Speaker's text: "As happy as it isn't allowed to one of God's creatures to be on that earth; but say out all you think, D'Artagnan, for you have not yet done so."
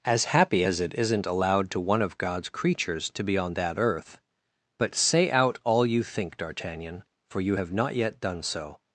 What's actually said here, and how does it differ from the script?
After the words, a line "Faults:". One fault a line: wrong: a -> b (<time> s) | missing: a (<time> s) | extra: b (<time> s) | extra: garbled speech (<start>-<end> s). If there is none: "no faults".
"As happy as it isn't allowed to one of God's creatures to be on that earth; but say out all you think, D'Artagnan, for you have not yet done so."
Faults:
no faults